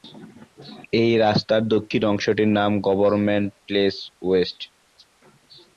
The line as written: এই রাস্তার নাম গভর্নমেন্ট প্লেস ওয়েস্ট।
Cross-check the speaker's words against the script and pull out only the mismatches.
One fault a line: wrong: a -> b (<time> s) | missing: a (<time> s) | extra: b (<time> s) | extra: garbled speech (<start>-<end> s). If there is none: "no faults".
extra: দক্ষিণ অংশটির (1.7 s)